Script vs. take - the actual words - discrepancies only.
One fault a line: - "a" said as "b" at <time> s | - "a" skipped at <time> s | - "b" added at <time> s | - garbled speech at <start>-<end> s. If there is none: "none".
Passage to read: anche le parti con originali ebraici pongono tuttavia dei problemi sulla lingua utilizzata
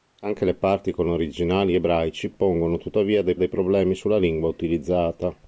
- "dei" added at 3.3 s